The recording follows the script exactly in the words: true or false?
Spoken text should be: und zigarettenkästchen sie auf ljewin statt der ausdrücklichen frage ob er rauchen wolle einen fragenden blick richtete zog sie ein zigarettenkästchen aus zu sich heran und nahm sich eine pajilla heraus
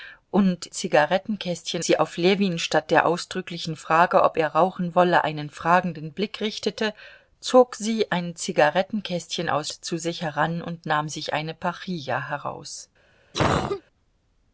true